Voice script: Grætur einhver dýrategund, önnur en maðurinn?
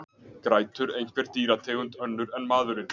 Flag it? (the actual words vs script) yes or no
no